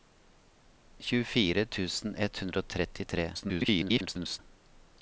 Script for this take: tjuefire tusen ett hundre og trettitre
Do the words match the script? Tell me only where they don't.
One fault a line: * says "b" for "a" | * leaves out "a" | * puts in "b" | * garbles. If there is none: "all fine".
* garbles